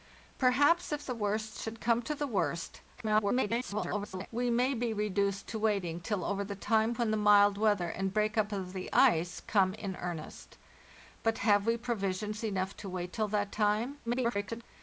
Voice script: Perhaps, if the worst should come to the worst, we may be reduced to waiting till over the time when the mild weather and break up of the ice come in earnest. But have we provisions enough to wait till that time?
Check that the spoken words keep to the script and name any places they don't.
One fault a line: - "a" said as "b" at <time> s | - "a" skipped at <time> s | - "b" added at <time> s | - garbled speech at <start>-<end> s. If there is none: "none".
- garbled speech at 3.0-4.3 s
- garbled speech at 14.1-14.6 s